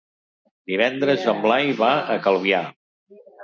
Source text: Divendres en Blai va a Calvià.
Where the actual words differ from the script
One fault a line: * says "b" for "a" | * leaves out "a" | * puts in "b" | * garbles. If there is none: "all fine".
all fine